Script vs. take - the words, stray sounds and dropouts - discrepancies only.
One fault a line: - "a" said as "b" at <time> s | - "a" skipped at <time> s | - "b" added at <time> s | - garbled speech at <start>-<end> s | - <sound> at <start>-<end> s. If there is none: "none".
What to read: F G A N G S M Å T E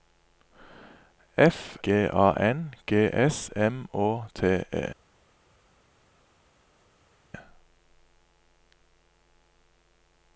none